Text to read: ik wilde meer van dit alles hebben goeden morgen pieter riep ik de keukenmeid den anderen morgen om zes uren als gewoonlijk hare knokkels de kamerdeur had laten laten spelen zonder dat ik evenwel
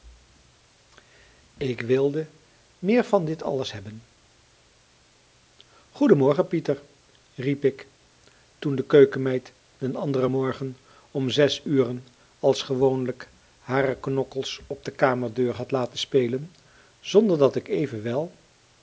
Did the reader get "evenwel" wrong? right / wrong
right